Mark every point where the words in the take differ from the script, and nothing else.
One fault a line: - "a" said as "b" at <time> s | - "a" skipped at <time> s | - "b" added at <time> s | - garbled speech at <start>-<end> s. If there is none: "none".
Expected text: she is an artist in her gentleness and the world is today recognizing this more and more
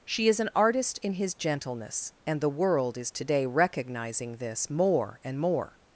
- "her" said as "his" at 1.1 s